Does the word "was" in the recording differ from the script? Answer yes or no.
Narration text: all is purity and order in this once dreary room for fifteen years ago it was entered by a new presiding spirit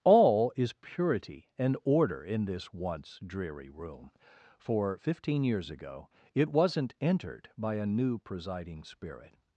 yes